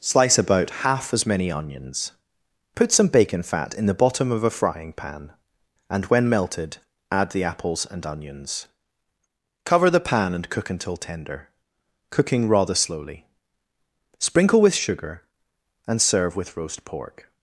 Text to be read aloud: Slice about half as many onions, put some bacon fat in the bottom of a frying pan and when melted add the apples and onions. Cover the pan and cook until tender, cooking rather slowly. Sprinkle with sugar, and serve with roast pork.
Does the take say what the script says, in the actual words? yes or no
yes